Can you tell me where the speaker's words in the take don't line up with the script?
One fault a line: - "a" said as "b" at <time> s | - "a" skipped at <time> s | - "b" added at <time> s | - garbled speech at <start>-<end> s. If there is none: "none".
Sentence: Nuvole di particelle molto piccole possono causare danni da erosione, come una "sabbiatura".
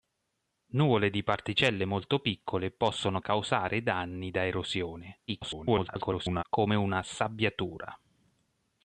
- garbled speech at 5.3-6.4 s